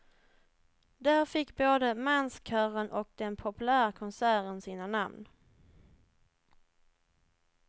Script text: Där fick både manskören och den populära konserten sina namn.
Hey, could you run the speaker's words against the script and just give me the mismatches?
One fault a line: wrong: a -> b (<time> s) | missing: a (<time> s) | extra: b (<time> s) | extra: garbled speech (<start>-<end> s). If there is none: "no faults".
no faults